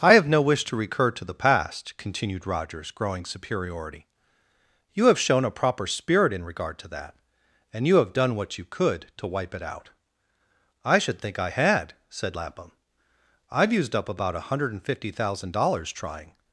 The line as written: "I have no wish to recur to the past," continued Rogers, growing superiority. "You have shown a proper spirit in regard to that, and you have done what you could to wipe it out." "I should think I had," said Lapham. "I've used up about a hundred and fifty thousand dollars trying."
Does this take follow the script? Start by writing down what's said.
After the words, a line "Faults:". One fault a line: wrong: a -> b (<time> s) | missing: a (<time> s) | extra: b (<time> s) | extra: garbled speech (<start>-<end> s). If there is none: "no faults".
"I have no wish to recur to the past," continued Rogers, growing superiority. "You have shown a proper spirit in regard to that, and you have done what you could to wipe it out." "I should think I had," said Lapham. "I've used up about a hundred and fifty thousand dollars trying."
Faults:
no faults